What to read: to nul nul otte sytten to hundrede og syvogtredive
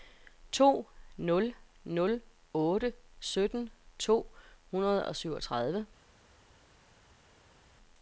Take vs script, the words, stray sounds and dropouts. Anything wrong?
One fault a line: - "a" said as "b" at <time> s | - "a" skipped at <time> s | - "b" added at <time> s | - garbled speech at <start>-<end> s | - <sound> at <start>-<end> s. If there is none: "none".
none